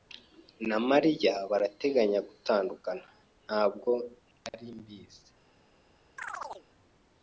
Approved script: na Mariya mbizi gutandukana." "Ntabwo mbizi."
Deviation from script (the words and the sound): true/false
true